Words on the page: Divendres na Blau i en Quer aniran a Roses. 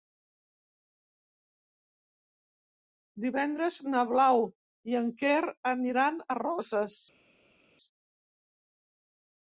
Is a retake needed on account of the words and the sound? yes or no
no